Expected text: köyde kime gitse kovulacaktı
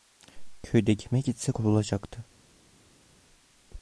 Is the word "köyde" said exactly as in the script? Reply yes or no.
yes